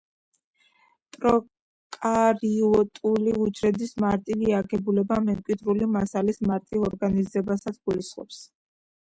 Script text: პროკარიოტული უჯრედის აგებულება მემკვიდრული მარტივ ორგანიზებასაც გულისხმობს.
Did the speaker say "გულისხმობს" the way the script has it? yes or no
yes